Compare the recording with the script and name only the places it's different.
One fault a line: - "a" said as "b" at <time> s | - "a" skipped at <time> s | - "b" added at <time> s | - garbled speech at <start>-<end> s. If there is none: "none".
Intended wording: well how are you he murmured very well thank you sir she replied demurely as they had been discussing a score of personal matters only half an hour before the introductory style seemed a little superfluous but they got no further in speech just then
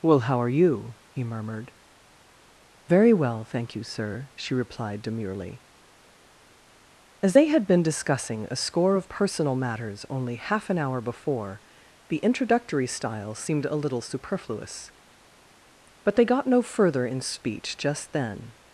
none